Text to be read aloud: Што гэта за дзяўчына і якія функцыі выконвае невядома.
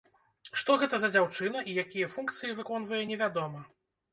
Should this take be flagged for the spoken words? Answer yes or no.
no